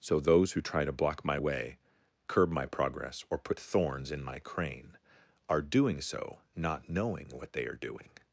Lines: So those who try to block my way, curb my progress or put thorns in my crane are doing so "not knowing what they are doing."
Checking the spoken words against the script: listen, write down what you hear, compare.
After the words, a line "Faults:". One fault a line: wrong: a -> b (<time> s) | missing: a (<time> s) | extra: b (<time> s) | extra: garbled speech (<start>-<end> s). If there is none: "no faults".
So those who try to block my way, curb my progress or put thorns in my crane are doing so "not knowing what they are doing."
Faults:
no faults